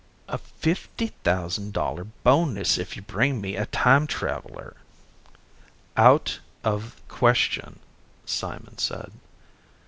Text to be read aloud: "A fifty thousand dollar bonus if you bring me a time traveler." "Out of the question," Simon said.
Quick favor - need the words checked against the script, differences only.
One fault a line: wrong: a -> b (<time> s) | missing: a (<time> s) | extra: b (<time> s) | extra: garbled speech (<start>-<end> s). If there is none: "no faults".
missing: the (7.0 s)